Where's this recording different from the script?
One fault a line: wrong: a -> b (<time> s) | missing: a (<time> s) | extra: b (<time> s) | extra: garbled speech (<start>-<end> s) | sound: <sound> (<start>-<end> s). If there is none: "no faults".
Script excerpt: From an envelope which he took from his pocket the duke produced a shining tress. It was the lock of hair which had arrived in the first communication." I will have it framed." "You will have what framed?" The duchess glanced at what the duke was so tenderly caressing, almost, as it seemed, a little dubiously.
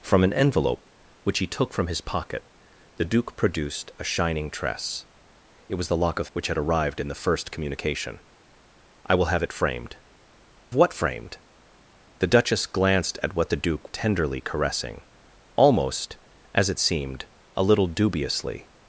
missing: hair (6.3 s)
missing: You will have (10.0 s)
missing: was so (13.9 s)